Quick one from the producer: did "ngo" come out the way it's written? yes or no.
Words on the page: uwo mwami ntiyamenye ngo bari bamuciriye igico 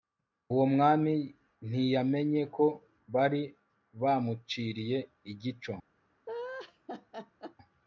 no